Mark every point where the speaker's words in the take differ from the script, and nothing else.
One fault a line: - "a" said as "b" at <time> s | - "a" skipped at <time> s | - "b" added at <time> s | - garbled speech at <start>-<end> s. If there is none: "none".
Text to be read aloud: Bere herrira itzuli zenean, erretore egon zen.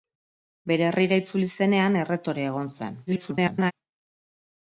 - garbled speech at 3.1-3.7 s